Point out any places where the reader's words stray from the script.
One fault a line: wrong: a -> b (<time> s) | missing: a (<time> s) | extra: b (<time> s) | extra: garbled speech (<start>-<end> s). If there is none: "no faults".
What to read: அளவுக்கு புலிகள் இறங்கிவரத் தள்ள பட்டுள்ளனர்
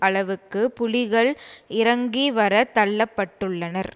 no faults